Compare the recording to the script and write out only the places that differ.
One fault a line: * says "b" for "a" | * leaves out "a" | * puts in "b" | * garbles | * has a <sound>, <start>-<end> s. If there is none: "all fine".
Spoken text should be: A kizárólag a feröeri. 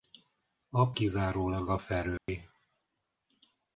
* has a dropout, 2.2-2.3 s